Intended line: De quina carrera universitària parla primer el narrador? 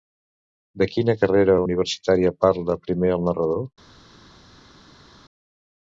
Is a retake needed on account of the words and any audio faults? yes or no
no